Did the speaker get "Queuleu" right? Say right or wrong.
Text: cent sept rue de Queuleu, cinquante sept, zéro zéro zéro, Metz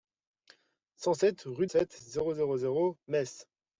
wrong